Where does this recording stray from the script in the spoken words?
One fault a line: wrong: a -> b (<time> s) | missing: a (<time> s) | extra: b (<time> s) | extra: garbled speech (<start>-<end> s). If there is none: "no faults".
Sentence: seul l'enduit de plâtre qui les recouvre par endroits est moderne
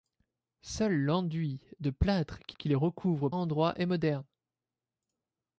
extra: qui (2.5 s)
missing: par (3.3 s)